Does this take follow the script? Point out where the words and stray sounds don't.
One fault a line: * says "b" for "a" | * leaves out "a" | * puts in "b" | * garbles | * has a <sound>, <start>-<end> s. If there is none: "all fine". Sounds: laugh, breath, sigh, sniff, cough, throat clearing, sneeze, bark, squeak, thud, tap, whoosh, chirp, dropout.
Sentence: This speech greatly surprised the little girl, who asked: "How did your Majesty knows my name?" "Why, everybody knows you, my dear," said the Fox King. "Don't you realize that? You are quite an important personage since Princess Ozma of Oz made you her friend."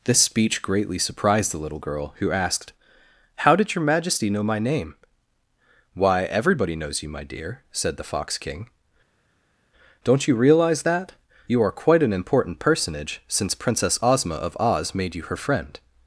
* says "know" for "knows"